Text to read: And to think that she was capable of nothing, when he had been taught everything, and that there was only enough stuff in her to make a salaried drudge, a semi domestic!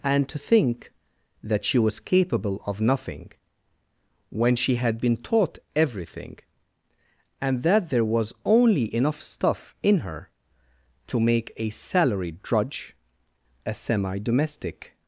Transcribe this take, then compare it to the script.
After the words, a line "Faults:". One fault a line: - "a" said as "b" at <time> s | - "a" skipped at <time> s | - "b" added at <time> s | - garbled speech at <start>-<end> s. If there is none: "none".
And to think that she was capable of nothing, when she had been taught everything, and that there was only enough stuff in her to make a salaried drudge, a semi domestic!
Faults:
- "he" said as "she" at 4.5 s